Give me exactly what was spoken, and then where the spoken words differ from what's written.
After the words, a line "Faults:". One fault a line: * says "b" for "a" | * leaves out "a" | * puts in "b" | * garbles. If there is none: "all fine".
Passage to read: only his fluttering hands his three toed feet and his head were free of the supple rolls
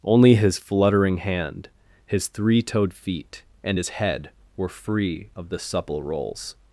only his fluttering hand his three toed feet and his head were free of the supple rolls
Faults:
* says "hand" for "hands"